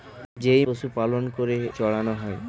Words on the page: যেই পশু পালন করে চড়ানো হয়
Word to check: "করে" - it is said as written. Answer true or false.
true